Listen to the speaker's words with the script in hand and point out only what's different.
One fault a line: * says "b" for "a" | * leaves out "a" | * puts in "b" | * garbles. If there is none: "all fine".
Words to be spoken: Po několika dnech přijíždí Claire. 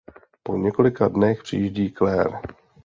all fine